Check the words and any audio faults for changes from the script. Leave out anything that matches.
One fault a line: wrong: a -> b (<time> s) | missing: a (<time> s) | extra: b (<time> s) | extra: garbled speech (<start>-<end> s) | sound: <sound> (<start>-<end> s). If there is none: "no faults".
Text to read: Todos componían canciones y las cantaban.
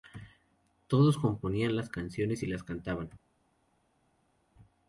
extra: las (1.8 s)